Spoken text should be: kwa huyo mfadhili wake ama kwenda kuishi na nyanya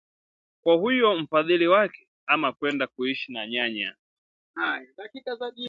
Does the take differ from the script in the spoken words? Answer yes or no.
no